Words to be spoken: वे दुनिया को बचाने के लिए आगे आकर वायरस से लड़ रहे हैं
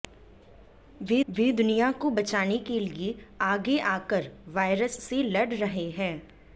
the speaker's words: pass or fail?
fail